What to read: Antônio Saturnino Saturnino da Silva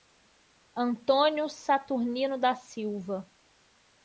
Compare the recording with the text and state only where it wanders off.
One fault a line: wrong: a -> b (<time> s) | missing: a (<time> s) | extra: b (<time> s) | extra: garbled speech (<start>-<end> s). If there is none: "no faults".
missing: Saturnino (2.4 s)